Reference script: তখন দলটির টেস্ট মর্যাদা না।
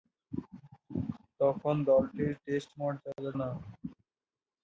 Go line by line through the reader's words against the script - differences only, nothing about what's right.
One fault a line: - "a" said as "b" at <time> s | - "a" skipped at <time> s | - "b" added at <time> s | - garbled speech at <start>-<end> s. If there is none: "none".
none